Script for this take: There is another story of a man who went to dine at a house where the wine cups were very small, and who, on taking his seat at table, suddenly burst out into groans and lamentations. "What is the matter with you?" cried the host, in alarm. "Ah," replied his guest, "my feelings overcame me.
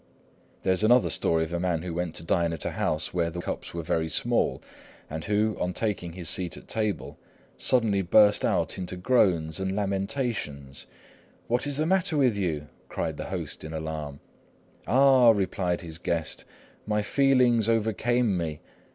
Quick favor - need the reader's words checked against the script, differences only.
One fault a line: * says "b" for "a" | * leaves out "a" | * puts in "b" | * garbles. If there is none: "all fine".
* leaves out "wine"